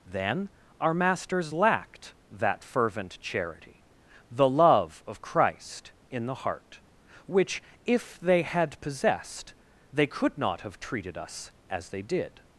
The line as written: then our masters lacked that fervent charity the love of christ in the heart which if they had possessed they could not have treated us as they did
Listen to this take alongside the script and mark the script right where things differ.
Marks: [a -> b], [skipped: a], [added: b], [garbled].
then our masters lacked that fervent charity the love of christ in the heart which if they had possessed they could not have treated us as they did